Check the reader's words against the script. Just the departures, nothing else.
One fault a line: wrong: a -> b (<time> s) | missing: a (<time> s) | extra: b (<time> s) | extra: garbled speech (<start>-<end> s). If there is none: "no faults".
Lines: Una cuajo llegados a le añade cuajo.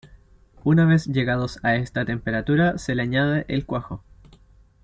wrong: cuajo -> vez (0.8 s)
extra: esta temperatura se (1.8 s)
extra: el (3.5 s)